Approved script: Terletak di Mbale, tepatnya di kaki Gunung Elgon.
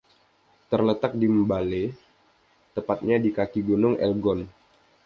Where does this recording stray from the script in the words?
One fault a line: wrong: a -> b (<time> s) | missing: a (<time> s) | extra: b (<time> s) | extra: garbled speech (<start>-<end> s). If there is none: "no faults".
no faults